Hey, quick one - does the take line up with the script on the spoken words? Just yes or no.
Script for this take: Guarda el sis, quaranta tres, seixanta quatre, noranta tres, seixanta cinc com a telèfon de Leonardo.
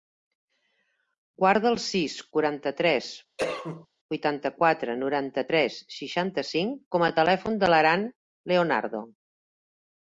no